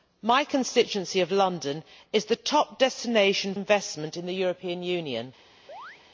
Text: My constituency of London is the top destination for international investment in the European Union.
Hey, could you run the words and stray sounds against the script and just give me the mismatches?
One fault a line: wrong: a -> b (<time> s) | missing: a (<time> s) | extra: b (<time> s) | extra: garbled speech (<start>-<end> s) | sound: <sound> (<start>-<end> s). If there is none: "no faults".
missing: for international (3.5 s)
sound: chirp (5.7-6.0 s)